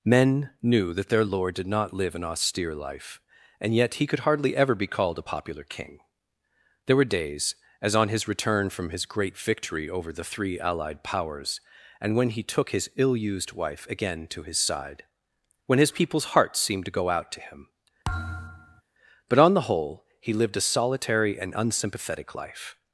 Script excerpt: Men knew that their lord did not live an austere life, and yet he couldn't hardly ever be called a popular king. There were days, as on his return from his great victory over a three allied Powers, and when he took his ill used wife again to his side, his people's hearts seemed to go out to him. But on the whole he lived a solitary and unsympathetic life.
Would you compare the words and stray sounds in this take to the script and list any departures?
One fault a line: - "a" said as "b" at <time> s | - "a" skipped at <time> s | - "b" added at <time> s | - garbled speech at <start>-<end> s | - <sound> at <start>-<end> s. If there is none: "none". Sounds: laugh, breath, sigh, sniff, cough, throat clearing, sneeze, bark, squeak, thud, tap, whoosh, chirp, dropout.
- "couldn't" said as "could" at 4.1 s
- "a" said as "the" at 10.1 s
- "when" added at 15.7 s
- thud at 18.0-18.8 s